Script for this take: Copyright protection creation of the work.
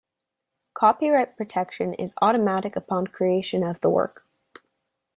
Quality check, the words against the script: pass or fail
fail